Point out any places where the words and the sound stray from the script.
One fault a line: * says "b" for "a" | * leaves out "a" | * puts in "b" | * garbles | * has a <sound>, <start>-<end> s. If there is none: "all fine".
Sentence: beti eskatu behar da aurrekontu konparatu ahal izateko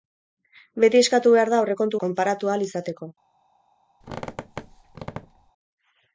* has a squeak, 4.0-5.5 s